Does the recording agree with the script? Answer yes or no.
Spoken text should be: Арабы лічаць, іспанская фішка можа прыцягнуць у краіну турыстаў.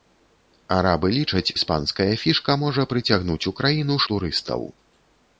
yes